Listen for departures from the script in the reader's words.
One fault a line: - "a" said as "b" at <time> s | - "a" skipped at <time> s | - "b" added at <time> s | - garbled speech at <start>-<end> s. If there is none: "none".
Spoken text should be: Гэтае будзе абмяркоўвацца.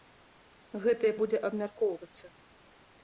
none